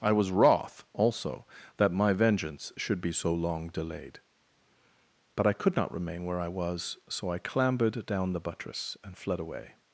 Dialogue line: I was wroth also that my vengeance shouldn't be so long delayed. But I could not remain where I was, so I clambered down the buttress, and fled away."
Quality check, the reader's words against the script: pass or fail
fail